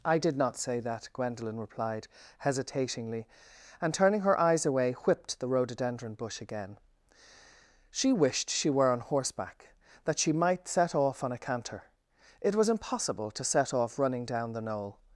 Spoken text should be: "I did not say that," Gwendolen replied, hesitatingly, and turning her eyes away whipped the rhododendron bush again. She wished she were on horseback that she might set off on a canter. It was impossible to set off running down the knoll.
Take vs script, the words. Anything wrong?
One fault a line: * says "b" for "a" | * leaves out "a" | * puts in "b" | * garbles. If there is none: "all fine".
all fine